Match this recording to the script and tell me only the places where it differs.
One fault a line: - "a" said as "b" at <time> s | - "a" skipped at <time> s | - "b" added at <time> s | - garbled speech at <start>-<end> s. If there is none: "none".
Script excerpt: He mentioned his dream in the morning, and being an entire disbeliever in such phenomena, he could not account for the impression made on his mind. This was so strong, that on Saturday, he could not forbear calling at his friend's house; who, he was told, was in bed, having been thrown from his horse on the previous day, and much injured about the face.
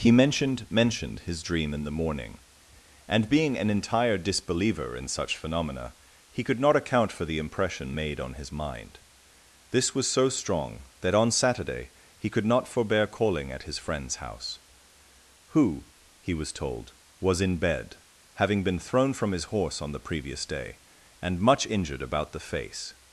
- "mentioned" added at 0.7 s